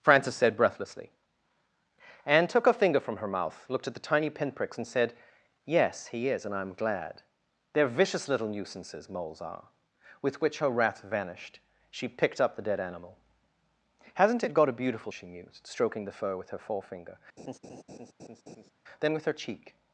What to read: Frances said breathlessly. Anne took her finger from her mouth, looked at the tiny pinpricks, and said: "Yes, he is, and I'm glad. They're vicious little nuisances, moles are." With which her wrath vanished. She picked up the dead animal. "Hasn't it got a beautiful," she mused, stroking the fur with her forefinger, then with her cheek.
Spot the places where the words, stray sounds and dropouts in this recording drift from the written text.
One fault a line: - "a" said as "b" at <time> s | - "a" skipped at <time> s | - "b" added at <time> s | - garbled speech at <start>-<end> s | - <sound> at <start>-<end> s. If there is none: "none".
- laugh at 17.4-18.7 s